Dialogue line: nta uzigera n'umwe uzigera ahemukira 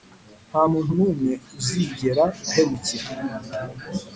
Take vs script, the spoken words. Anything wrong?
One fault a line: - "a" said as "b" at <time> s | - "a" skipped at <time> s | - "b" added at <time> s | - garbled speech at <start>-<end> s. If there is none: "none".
- "uzigera" said as "muntu" at 0.7 s